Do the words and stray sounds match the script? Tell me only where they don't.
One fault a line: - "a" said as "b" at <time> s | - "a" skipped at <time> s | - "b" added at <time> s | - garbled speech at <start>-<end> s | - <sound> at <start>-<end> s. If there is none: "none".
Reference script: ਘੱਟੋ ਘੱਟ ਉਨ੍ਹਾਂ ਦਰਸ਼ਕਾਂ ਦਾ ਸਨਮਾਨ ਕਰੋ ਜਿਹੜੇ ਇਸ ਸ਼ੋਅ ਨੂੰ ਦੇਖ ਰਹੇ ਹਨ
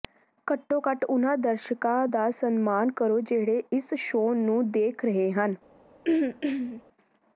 - throat clearing at 6.0-6.8 s